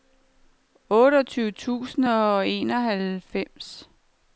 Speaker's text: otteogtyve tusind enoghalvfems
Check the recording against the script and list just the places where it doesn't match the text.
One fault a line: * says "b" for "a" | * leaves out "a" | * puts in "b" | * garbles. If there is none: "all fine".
* puts in "og"